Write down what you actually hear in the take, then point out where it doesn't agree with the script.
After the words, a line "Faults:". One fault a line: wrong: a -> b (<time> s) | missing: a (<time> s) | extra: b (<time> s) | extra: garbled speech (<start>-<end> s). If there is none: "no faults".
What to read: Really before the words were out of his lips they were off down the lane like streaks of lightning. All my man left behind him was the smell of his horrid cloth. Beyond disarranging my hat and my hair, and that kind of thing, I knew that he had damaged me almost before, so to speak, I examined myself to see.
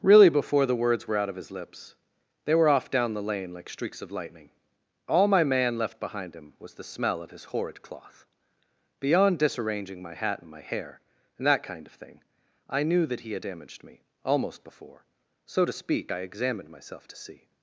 Really before the words were out of his lips they were off down the lane like streaks of lightning. All my man left behind him was the smell of his horrid cloth. Beyond disarranging my hat and my hair, and that kind of thing, I knew that he had damaged me almost before, so to speak, I examined myself to see.
Faults:
no faults